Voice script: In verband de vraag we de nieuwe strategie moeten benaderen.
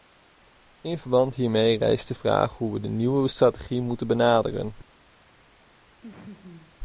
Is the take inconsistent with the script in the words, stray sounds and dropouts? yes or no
yes